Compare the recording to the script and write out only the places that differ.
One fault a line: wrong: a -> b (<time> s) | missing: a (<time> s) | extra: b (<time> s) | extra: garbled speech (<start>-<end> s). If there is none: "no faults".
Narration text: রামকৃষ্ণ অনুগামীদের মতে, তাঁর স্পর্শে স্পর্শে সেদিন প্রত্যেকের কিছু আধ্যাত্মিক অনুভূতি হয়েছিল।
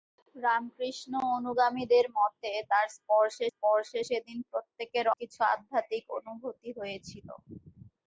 no faults